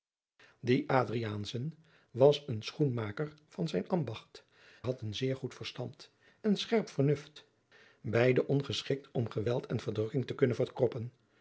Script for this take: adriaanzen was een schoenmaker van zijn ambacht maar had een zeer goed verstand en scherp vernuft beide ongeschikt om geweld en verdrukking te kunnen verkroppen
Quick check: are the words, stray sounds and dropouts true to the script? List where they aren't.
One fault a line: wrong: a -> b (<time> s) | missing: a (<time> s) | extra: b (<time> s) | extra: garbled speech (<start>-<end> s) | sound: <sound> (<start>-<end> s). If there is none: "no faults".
missing: maar (4.5 s)